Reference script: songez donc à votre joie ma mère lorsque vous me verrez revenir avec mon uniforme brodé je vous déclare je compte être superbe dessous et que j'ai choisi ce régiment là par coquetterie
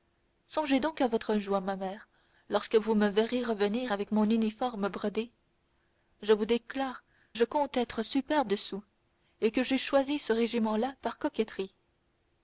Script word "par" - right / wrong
right